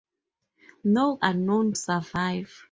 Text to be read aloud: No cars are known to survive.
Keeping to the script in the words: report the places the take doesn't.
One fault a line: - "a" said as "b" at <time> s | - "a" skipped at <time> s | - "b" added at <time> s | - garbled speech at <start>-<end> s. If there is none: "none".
- "cars" skipped at 1.2 s
- "to" skipped at 1.7 s